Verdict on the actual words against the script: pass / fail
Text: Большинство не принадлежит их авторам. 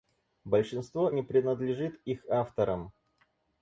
pass